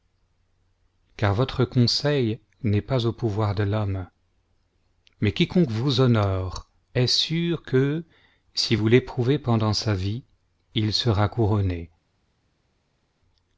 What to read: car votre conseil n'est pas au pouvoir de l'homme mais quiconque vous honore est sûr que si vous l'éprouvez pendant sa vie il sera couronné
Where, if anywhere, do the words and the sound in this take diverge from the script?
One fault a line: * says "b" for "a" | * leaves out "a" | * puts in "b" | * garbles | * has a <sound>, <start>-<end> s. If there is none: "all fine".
all fine